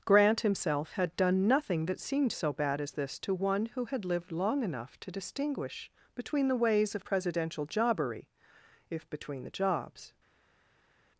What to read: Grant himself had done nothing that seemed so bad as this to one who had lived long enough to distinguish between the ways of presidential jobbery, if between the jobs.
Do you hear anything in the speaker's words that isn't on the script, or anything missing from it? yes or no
no